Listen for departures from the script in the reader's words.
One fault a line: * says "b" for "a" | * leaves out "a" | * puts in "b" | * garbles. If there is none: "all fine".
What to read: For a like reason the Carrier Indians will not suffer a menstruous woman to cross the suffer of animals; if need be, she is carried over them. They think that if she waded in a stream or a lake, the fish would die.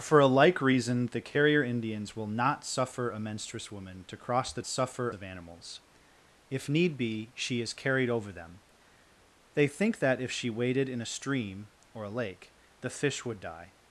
all fine